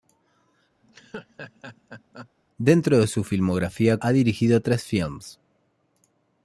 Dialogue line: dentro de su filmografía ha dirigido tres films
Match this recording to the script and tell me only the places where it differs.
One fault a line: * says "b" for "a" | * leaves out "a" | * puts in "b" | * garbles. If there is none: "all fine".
all fine